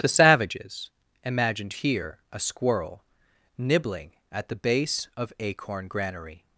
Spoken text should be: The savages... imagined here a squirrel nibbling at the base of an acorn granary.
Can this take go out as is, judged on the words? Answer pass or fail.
fail